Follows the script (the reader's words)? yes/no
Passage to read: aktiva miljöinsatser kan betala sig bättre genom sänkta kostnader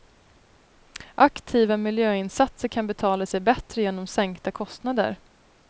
yes